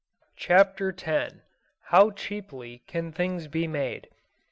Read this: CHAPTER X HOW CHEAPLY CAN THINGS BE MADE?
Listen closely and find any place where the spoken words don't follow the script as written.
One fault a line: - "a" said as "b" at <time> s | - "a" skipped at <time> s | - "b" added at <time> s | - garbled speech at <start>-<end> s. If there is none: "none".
none